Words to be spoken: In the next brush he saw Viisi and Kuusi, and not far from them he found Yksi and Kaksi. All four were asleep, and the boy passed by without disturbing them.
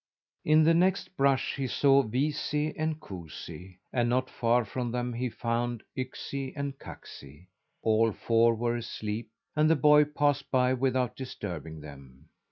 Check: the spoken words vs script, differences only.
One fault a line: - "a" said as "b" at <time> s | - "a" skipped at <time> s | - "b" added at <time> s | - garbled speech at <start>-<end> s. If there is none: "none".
none